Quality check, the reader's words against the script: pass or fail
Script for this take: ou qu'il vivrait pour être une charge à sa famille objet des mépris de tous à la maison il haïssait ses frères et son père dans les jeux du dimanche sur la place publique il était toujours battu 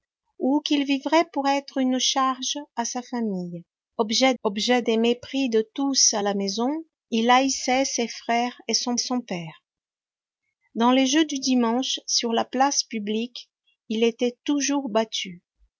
fail